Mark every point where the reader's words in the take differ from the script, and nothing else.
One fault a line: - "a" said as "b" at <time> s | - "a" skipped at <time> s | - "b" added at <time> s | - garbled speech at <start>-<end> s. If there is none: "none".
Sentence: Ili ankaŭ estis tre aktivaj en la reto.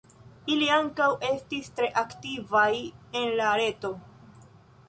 none